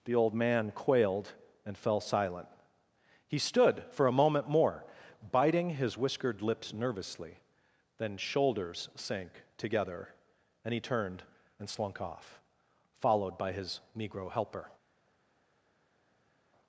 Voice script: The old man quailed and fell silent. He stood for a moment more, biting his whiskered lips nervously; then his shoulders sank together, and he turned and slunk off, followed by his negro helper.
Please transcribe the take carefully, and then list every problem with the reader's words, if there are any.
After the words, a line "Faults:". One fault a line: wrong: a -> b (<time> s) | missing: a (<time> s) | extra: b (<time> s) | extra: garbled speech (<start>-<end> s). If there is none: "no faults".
The old man quailed and fell silent. He stood for a moment more, biting his whiskered lips nervously; then shoulders sank together, and he turned and slunk off, followed by his negro helper.
Faults:
missing: his (8.2 s)